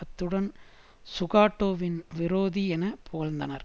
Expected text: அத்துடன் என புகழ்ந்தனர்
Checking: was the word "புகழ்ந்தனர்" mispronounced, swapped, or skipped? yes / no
no